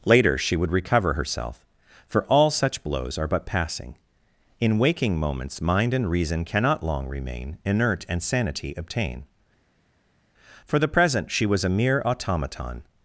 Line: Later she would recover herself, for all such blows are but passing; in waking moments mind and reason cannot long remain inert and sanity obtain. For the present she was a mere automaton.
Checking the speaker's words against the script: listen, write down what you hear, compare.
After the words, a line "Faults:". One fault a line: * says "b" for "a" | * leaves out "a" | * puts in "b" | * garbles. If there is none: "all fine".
Later she would recover herself, for all such blows are but passing; in waking moments mind and reason cannot long remain inert and sanity obtain. For the present she was a mere automaton.
Faults:
all fine